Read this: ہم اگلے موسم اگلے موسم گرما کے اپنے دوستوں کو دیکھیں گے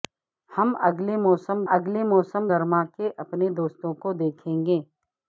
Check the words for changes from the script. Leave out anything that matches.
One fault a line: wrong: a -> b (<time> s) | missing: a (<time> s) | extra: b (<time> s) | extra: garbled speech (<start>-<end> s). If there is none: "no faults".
no faults